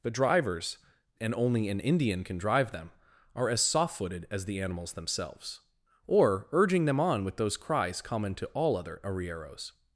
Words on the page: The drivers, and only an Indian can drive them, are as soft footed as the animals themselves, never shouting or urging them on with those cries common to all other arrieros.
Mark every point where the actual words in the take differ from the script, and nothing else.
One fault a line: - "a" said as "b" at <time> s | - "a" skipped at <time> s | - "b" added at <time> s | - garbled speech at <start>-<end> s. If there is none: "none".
- "never shouting" skipped at 5.6 s